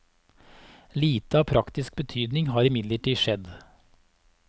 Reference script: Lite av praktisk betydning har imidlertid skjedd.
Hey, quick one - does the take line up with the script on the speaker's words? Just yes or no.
yes